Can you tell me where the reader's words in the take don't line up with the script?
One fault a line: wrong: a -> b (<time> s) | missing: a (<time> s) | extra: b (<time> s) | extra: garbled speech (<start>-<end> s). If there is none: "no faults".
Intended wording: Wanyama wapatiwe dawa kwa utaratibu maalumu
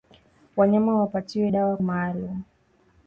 missing: kwa utaratibu (1.8 s)